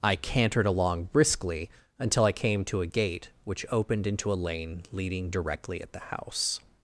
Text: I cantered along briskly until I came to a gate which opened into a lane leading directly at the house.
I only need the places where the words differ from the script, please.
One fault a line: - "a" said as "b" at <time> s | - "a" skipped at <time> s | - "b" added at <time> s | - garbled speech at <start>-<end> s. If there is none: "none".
none